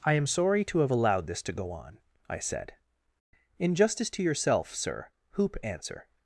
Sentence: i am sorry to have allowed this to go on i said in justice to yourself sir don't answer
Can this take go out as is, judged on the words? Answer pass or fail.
fail